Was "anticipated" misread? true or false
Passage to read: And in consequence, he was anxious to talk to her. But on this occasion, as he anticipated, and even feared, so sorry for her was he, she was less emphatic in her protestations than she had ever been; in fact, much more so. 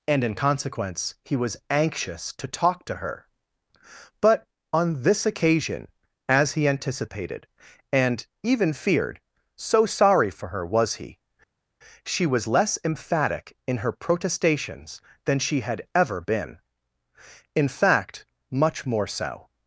false